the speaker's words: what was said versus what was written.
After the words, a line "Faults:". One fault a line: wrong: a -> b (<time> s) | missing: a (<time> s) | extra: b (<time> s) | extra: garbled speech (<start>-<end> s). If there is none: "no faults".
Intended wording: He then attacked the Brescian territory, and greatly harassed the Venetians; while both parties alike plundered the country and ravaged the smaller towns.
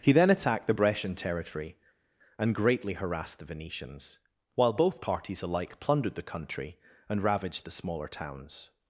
He then attacked the Brescian territory, and greatly harassed the Venetians; while both parties alike plundered the country and ravaged the smaller towns.
Faults:
no faults